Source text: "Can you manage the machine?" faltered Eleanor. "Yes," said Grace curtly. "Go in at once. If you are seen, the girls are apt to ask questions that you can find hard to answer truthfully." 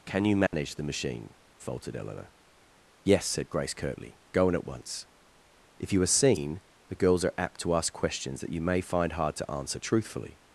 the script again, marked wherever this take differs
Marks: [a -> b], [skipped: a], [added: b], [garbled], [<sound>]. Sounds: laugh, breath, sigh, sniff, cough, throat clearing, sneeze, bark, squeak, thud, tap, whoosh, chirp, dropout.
"Can you manage [dropout] the machine?" faltered Eleanor. "Yes," said Grace curtly. "Go in at once. If you are seen, the girls are apt to ask questions that you [can -> may] find hard to answer truthfully."